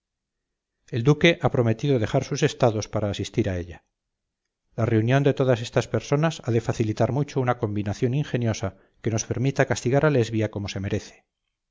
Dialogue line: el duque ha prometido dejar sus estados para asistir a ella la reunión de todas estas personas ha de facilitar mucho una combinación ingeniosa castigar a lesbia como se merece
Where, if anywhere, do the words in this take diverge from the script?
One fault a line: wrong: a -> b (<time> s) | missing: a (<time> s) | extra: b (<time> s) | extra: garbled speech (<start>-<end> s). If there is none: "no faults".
extra: que nos permita (9.0 s)